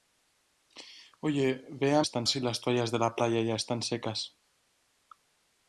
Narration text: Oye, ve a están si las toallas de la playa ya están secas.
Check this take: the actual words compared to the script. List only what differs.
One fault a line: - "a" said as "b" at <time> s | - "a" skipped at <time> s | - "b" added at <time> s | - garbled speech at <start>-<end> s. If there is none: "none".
none